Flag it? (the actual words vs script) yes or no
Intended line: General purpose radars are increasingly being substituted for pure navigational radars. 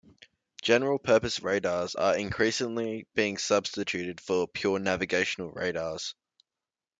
no